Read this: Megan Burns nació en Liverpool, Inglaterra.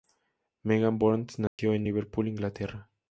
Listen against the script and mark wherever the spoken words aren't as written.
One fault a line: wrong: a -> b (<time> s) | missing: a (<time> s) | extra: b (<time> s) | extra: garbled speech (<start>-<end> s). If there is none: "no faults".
no faults